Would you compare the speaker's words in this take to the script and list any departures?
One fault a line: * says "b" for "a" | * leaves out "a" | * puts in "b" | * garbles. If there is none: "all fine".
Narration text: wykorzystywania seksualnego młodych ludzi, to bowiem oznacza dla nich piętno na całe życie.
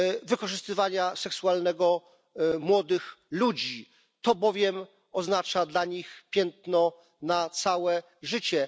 all fine